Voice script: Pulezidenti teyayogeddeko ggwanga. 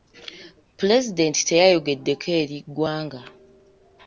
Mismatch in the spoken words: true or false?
true